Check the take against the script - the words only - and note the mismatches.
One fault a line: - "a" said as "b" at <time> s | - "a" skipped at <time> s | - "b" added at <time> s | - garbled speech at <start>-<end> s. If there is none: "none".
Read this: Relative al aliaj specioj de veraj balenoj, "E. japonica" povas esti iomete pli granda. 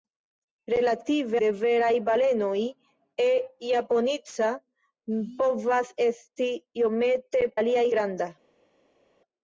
- "al aliaj specioj" skipped at 1.4 s
- "pli" said as "aliaj" at 7.6 s